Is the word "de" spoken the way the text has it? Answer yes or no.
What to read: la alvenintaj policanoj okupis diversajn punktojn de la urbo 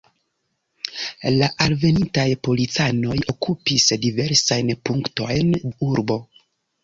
no